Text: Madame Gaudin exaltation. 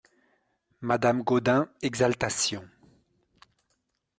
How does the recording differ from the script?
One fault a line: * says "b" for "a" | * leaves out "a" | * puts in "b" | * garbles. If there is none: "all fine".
all fine